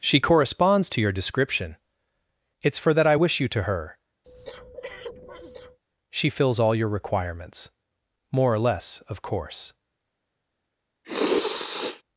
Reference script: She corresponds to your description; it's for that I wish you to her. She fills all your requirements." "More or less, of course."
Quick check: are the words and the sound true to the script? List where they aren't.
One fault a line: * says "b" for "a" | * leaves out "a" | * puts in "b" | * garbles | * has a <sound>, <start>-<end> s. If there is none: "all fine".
* has a breath, 4.2-5.8 s
* has a sniff, 11.0-12.0 s